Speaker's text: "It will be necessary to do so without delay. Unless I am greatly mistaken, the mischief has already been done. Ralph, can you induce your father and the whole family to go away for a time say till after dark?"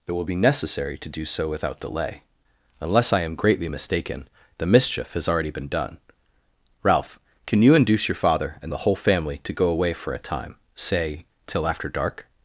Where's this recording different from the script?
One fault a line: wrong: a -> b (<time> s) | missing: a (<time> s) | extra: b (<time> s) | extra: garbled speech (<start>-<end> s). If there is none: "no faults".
no faults